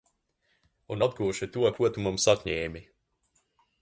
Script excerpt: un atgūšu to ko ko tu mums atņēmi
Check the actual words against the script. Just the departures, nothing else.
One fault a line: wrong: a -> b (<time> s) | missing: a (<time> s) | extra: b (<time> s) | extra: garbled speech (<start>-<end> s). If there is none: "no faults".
missing: ko (1.9 s)